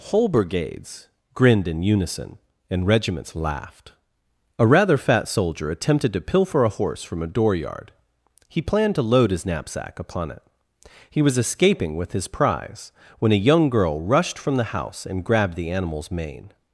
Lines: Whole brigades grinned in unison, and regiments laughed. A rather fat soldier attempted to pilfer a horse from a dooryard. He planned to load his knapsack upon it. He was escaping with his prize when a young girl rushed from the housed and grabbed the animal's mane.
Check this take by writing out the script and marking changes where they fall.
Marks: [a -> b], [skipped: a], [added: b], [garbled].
Whole brigades grinned in unison, and regiments laughed. A rather fat soldier attempted to pilfer a horse from a dooryard. He planned to load his knapsack upon it. He was escaping with his prize when a young girl rushed from the [housed -> house] and grabbed the animal's mane.